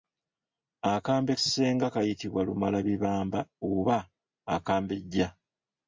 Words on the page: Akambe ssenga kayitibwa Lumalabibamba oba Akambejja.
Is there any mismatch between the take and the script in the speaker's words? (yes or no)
no